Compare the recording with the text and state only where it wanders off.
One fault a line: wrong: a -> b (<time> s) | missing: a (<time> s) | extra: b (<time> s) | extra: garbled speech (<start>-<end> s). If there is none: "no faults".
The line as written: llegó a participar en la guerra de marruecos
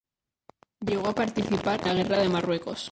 missing: en (1.8 s)